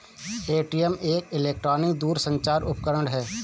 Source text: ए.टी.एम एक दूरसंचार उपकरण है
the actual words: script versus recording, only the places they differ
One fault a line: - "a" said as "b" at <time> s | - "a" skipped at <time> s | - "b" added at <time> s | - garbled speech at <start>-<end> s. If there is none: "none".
- "इलेक्ट्रॉनिक" added at 1.3 s